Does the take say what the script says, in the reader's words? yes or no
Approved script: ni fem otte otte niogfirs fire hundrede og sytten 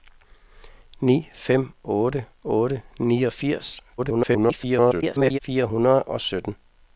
no